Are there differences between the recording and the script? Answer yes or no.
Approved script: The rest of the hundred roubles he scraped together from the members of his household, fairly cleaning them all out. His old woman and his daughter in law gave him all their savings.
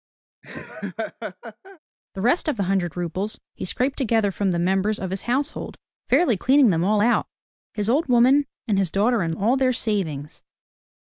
yes